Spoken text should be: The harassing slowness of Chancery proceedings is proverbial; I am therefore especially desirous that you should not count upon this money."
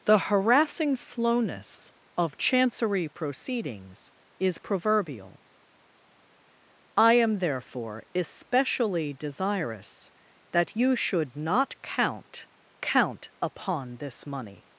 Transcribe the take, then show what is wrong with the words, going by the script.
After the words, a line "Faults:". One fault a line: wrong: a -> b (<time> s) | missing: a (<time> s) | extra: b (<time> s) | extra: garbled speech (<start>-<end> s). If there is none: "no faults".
The harassing slowness of Chancery proceedings is proverbial; I am therefore especially desirous that you should not count count upon this money."
Faults:
extra: count (12.8 s)